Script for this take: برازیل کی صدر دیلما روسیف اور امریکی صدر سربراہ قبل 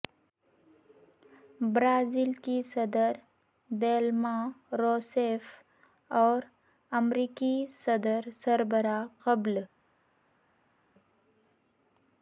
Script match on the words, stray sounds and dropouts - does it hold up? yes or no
yes